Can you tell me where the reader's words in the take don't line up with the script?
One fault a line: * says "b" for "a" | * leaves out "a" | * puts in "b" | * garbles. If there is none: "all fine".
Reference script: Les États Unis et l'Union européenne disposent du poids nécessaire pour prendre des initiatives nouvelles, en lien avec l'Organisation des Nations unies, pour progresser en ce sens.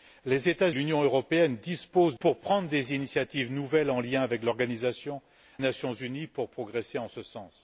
* leaves out "Unis et"
* leaves out "du poids nécessaire"
* leaves out "des"